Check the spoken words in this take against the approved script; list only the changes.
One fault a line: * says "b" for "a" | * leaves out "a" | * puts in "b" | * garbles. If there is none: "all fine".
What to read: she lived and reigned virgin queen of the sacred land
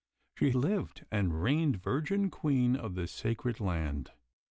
all fine